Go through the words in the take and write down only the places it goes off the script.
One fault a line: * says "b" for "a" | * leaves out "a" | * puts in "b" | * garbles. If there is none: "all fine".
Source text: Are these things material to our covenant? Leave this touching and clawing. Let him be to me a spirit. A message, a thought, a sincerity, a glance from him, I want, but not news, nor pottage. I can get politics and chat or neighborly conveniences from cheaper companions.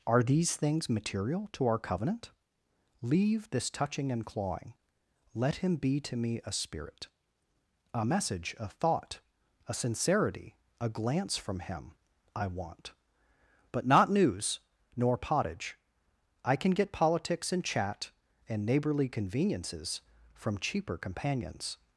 * says "and" for "or"